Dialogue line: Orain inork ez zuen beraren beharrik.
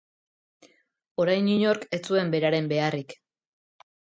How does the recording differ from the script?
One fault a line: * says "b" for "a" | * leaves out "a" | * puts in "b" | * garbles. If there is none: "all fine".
all fine